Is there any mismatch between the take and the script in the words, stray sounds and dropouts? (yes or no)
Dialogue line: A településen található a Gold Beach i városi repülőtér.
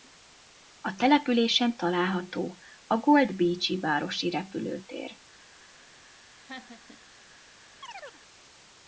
yes